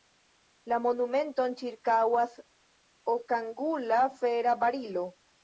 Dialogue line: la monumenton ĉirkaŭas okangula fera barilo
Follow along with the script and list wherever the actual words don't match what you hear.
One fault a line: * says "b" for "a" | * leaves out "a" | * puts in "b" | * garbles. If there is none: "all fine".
all fine